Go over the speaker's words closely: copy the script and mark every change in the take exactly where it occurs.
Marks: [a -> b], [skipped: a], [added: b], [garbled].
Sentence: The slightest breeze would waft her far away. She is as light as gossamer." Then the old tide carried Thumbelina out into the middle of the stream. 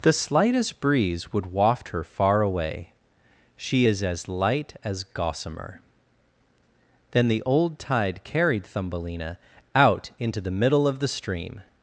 The slightest breeze would waft her far away. She is as light as gossamer." Then the old tide carried Thumbelina out into the middle of the stream.